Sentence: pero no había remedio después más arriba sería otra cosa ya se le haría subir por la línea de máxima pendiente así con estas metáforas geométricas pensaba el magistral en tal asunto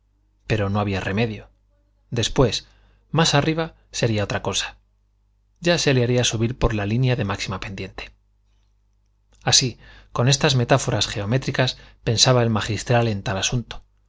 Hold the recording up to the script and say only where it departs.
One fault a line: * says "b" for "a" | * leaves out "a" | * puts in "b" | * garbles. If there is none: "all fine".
all fine